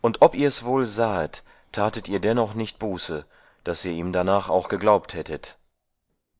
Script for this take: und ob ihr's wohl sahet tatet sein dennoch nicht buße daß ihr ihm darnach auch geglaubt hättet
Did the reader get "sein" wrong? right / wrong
wrong